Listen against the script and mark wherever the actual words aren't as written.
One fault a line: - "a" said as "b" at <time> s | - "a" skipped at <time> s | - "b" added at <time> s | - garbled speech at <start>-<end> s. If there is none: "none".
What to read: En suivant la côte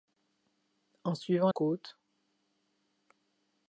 - "la" skipped at 1.5 s